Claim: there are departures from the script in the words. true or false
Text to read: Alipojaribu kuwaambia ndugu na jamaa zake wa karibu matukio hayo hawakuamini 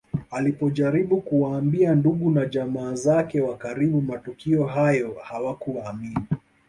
false